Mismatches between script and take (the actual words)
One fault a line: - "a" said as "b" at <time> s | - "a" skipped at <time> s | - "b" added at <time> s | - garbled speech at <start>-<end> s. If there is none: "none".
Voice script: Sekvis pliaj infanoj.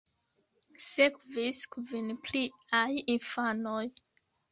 - "kvin" added at 1.8 s